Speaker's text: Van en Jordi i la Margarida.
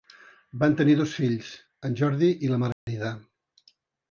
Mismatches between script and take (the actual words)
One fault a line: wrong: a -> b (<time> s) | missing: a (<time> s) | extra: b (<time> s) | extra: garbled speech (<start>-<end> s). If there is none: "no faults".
extra: tenir dos fills (0.8 s)